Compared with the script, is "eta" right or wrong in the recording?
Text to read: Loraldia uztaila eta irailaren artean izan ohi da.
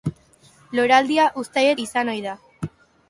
wrong